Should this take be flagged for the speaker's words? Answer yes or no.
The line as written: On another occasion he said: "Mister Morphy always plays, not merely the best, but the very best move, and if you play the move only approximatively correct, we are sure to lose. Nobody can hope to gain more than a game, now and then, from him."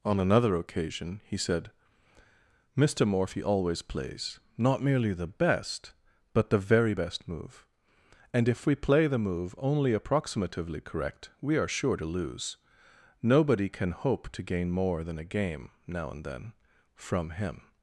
yes